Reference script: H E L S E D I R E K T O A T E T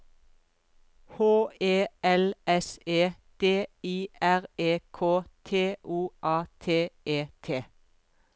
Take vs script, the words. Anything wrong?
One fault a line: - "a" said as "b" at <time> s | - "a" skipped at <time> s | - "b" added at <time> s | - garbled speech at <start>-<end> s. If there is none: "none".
none